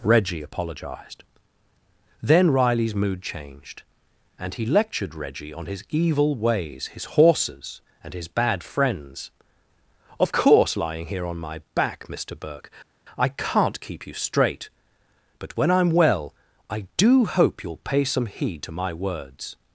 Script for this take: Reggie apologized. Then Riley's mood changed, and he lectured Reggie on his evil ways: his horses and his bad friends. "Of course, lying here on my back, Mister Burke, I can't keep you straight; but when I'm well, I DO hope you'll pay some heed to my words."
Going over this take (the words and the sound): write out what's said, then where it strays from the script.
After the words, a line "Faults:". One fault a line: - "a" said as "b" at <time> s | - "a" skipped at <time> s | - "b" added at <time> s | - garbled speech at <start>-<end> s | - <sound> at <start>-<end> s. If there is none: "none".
Reggie apologized. Then Riley's mood changed, and he lectured Reggie on his evil ways: his horses and his bad friends. "Of course, lying here on my back, Mister Burke, I can't keep you straight; but when I'm well, I DO hope you'll pay some heed to my words."
Faults:
none